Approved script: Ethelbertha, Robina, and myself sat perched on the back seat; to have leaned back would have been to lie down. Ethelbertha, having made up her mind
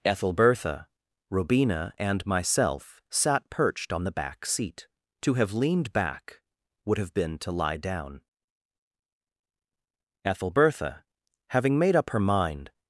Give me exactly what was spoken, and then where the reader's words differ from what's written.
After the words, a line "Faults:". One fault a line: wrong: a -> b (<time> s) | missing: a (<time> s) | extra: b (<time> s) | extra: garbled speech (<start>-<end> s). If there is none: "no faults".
Ethelbertha, Robina, and myself sat perched on the back seat; to have leaned back would have been to lie down. Ethelbertha, having made up her mind
Faults:
no faults